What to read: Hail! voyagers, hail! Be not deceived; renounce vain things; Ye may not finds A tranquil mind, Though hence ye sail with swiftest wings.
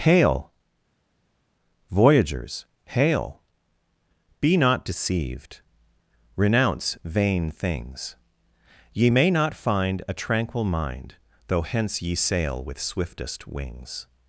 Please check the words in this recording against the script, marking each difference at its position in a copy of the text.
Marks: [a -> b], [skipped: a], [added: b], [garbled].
Hail! voyagers, hail! Be not deceived; renounce vain things; Ye may not [finds -> find] A tranquil mind, Though hence ye sail with swiftest wings.